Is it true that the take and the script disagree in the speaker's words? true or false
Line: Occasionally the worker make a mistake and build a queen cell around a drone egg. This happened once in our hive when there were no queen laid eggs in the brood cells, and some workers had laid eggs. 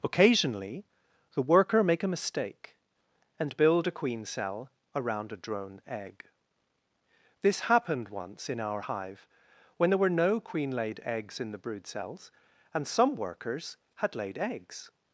false